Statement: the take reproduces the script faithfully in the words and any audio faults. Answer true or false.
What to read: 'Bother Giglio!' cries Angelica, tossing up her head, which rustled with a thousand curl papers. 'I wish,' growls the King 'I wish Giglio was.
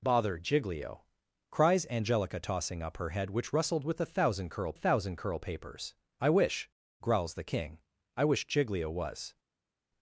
false